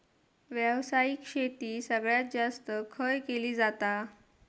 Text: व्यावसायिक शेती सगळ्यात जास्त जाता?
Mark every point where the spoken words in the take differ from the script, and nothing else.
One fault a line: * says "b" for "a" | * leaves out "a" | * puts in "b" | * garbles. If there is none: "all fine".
* puts in "खय केली"